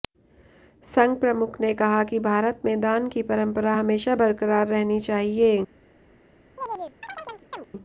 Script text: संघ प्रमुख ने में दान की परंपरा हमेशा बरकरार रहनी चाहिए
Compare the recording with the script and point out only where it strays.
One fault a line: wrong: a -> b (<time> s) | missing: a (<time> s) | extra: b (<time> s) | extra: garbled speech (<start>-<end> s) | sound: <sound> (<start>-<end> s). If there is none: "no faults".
extra: कहा कि भारत (1.8 s)
sound: chirp (6.6-7.7 s)